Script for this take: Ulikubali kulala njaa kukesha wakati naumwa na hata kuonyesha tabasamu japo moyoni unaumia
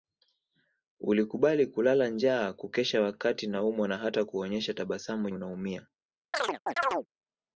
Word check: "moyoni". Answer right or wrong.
wrong